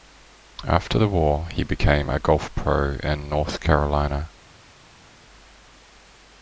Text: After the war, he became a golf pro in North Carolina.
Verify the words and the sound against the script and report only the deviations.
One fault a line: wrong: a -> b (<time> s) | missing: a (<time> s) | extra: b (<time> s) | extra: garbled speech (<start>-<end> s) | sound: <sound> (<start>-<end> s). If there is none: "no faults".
no faults